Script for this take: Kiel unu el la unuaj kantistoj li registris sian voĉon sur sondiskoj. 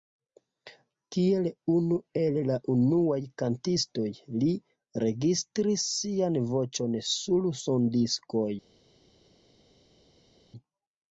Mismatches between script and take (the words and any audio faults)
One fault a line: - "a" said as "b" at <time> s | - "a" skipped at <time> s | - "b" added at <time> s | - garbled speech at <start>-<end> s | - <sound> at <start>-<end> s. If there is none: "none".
none